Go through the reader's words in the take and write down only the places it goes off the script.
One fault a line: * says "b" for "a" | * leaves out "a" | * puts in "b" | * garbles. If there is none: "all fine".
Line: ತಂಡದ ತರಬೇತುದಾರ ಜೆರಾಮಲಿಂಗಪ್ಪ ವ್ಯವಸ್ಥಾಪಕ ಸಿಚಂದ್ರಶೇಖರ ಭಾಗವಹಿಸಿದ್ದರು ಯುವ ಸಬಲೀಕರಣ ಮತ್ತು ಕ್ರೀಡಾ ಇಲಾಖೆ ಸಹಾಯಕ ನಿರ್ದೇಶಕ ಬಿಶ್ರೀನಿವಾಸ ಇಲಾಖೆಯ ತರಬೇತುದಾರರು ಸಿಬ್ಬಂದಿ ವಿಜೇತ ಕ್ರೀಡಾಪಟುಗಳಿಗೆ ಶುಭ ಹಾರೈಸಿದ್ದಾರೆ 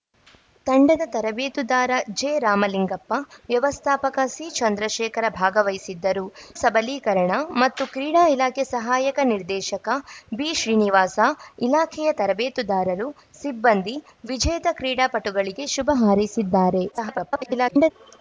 * leaves out "ಯುವ"
* garbles